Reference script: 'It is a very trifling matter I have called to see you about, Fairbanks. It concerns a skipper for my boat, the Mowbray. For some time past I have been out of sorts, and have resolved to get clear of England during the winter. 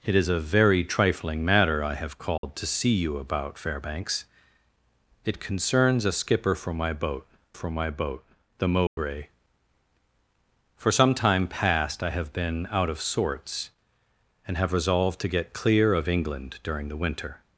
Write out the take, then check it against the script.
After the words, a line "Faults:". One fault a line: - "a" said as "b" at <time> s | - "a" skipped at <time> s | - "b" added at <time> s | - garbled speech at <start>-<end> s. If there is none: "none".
'It is a very trifling matter I have called to see you about, Fairbanks. It concerns a skipper for my boat for my boat, the Mowbray. For some time past I have been out of sorts, and have resolved to get clear of England during the winter.
Faults:
- "for my boat" added at 7.5 s